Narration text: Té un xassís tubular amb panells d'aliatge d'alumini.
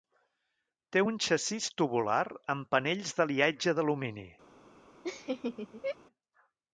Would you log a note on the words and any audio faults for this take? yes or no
yes